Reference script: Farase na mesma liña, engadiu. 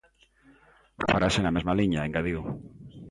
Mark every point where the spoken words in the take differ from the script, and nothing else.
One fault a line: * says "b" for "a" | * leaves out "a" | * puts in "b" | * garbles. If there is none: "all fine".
all fine